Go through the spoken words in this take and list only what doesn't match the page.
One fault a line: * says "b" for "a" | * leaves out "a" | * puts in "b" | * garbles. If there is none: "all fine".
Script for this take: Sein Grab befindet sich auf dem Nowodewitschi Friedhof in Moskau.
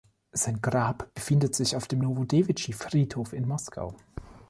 all fine